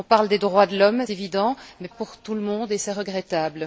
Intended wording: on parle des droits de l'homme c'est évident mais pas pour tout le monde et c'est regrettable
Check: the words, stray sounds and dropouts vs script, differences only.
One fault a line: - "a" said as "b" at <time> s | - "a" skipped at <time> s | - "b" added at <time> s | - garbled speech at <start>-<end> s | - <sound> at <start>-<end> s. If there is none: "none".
- "c'est" skipped at 1.0 s
- "pas" skipped at 1.9 s